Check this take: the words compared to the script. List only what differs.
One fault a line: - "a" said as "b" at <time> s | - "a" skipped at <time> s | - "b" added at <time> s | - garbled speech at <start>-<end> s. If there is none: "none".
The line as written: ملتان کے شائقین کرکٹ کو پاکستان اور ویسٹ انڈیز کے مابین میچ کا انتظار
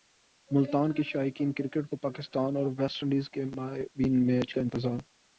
none